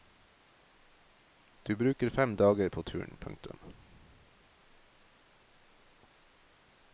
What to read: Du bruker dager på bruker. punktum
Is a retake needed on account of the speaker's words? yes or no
yes